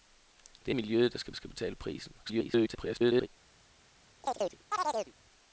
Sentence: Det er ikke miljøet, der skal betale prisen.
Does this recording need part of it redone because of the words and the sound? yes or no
yes